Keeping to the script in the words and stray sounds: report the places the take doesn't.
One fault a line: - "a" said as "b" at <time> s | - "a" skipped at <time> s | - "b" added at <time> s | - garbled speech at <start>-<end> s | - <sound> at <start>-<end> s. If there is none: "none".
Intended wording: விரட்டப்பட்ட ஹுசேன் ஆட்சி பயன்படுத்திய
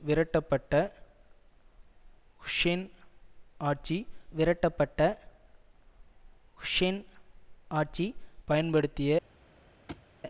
- "விரட்டப்பட்ட ஹுசேன் ஆட்சி" added at 4.3 s
- thud at 9.9-10.1 s